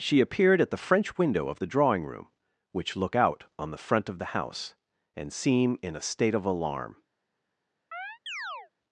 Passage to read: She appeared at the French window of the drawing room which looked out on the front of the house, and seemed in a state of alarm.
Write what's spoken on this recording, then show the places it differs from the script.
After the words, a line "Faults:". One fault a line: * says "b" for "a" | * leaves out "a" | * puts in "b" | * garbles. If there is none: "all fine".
She appeared at the French window of the drawing room which look out on the front of the house, and seem in a state of alarm.
Faults:
* says "look" for "looked"
* says "seem" for "seemed"